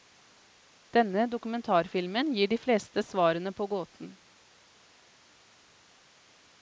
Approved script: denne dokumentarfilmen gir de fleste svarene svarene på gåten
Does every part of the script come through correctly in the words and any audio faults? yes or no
no